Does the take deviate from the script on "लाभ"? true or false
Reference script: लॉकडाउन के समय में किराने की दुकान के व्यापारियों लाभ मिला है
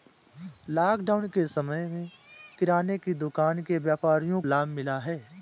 false